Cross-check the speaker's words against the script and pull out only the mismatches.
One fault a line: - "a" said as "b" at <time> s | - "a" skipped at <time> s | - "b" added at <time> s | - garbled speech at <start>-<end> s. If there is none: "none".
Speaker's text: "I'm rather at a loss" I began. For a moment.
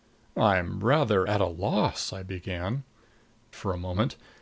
none